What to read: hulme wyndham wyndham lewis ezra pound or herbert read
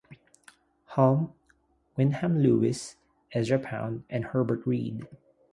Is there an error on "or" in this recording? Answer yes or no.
yes